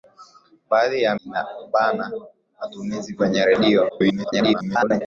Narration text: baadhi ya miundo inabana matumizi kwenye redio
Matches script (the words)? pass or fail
fail